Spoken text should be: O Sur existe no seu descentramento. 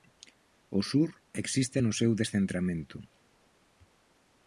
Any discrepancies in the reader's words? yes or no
no